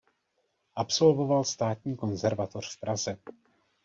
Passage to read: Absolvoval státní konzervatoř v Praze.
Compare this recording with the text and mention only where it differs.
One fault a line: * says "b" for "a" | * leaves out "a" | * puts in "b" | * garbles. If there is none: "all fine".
all fine